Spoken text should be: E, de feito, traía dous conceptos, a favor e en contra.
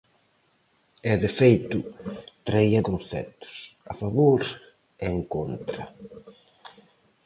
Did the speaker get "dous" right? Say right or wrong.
wrong